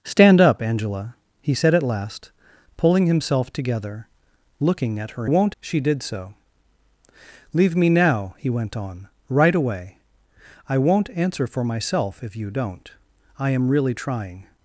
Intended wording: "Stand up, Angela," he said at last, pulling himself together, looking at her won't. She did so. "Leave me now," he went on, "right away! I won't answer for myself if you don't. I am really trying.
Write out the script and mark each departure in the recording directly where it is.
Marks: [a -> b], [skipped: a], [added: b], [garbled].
"Stand up, Angela," he said at last, pulling himself together, looking at her won't. She did so. "Leave me now," he went on, "right away! I won't answer for myself if you don't. I am really trying.